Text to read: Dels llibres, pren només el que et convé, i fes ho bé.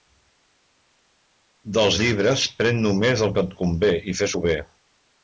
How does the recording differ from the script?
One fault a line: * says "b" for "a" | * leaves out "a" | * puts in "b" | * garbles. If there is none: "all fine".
all fine